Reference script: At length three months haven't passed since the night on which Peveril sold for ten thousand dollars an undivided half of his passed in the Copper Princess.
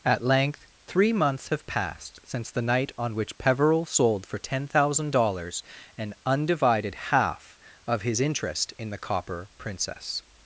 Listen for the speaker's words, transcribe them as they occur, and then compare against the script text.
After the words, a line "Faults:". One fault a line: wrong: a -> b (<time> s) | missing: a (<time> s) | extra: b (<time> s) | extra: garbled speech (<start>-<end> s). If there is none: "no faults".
At length three months have passed since the night on which Peveril sold for ten thousand dollars an undivided half of his interest in the Copper Princess.
Faults:
wrong: haven't -> have (1.5 s)
wrong: passed -> interest (8.2 s)